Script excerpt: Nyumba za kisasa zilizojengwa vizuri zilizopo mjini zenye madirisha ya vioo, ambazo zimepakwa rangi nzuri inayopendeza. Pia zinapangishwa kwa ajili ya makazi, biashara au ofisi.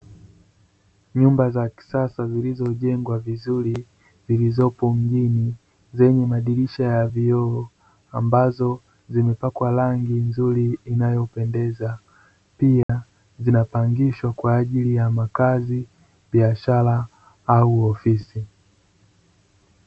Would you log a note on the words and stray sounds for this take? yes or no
yes